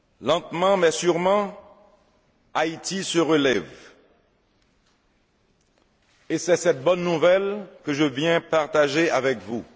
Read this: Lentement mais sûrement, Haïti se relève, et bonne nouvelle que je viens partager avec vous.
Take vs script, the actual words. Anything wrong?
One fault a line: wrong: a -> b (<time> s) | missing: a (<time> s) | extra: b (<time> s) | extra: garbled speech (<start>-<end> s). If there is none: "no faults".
extra: c'est cette (6.4 s)